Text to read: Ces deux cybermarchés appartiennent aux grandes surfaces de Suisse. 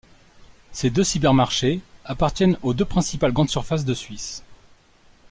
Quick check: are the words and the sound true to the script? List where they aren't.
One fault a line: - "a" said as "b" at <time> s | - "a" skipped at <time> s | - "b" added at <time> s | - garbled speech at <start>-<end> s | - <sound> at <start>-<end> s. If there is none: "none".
- "deux principales" added at 2.7 s